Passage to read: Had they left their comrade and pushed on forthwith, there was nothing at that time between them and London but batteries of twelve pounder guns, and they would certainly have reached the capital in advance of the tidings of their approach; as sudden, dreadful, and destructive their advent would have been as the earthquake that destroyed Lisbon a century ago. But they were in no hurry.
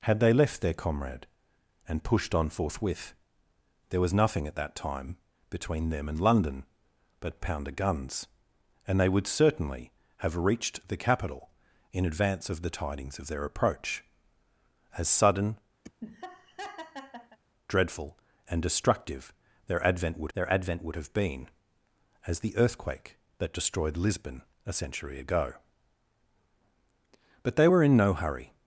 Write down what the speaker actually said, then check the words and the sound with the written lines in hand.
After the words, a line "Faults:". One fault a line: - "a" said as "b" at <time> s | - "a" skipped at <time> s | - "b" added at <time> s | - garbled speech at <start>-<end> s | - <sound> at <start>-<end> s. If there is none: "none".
Had they left their comrade and pushed on forthwith, there was nothing at that time between them and London but pounder guns, and they would certainly have reached the capital in advance of the tidings of their approach; as sudden, dreadful, and destructive their advent would their advent would have been as the earthquake that destroyed Lisbon a century ago. But they were in no hurry.
Faults:
- "batteries of twelve" skipped at 7.4 s
- laugh at 15.8-17.4 s
- "their advent would" added at 20.3 s